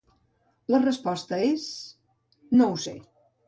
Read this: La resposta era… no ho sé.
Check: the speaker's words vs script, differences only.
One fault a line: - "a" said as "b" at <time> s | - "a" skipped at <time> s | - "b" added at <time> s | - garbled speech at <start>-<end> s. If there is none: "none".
- "era" said as "és" at 1.5 s